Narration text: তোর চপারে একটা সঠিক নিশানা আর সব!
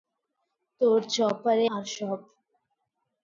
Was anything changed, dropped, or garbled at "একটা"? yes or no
yes